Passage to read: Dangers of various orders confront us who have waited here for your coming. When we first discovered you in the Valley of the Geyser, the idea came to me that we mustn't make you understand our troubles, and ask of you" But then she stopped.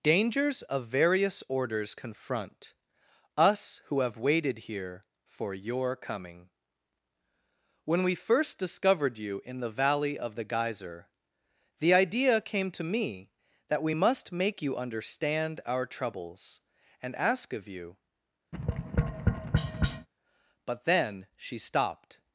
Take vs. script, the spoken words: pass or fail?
fail